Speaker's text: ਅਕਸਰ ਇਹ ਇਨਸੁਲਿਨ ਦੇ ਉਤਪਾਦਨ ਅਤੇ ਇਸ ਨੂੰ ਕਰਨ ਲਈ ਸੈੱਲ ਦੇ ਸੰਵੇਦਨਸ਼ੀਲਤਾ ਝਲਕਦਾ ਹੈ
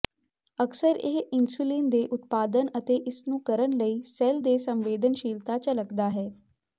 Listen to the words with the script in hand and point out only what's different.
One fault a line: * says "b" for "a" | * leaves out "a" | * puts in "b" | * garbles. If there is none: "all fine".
all fine